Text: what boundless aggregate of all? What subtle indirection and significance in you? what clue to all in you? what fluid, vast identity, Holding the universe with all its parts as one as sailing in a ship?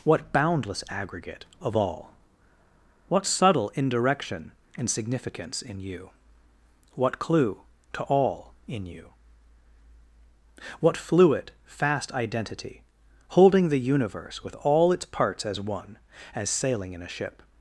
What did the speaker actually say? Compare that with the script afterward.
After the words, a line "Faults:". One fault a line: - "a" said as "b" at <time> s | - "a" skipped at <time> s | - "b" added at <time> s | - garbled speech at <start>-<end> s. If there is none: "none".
what boundless aggregate of all? What subtle indirection and significance in you? what clue to all in you? what fluid, fast identity, Holding the universe with all its parts as one as sailing in a ship?
Faults:
- "vast" said as "fast" at 11.6 s